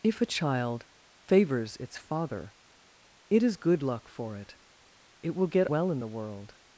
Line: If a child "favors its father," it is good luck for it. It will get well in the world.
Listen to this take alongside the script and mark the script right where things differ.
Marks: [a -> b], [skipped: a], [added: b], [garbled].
If a child "favors its father," it is good luck for it. It will get well in the world.